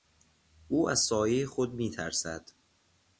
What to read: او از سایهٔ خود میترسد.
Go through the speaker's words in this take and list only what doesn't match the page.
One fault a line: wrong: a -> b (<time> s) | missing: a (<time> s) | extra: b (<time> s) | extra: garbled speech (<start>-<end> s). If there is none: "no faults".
no faults